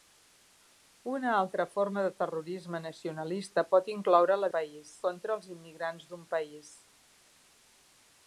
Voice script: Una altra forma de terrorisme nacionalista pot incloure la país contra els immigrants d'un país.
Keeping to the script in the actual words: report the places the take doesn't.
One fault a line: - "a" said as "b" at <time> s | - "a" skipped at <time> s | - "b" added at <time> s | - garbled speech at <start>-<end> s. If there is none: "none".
none